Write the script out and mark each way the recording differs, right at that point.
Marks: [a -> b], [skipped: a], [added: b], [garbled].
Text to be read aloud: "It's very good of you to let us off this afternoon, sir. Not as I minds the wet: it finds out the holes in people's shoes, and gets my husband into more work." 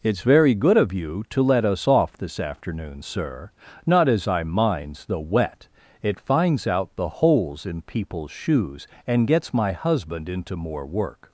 "It's very good of you to let us off this afternoon, sir. Not as I minds the wet: it finds out the holes in people's shoes, and gets my husband into more work."